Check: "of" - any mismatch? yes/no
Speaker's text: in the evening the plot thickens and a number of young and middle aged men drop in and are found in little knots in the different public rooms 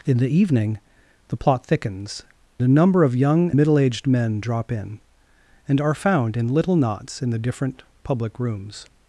no